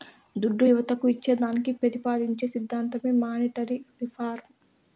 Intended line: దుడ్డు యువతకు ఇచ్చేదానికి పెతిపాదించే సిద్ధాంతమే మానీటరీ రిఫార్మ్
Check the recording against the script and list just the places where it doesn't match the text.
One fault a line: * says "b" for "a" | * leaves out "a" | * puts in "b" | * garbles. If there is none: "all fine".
all fine